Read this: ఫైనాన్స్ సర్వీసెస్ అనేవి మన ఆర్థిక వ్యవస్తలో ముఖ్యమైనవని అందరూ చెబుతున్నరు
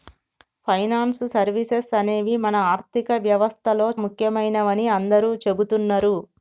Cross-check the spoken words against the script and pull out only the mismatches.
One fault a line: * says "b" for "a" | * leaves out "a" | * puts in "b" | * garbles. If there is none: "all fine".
all fine